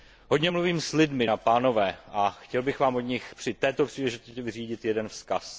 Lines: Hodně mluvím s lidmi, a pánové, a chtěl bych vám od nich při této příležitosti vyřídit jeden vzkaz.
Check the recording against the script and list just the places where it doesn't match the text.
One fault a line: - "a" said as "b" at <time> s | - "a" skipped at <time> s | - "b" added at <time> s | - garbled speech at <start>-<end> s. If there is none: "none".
none